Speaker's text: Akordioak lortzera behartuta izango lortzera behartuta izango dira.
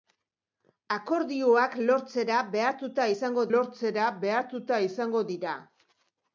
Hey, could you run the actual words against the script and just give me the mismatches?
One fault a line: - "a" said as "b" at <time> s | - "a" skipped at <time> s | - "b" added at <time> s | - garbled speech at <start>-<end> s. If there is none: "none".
none